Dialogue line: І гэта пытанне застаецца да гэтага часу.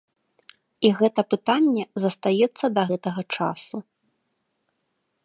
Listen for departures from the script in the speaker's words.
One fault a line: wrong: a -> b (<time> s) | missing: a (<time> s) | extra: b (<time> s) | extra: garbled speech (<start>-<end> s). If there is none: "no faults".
no faults